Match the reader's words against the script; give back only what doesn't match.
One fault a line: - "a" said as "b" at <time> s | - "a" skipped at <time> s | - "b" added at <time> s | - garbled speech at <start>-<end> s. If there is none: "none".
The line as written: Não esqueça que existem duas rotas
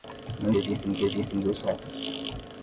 - "esqueça" said as "existem" at 0.6 s